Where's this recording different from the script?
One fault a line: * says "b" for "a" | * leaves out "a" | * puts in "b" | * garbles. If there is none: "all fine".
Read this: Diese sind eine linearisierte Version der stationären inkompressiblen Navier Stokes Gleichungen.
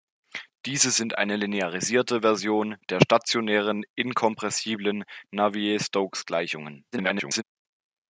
* garbles